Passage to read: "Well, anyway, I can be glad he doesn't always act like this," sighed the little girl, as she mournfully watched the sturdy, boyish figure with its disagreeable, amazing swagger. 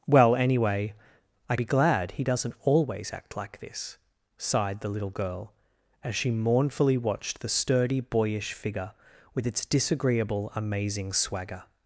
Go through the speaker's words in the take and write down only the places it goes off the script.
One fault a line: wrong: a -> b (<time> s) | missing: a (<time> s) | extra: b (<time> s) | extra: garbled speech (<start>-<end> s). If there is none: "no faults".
missing: can (1.6 s)